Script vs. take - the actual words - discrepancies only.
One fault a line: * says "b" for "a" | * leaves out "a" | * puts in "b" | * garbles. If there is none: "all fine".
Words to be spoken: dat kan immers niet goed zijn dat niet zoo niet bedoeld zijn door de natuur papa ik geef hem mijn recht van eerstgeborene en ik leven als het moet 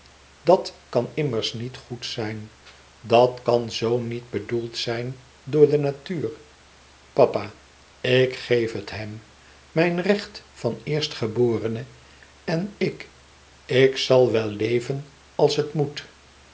* says "kan" for "niet"
* puts in "het"
* puts in "ik zal wel"